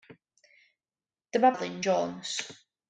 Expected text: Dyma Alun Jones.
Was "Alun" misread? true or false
false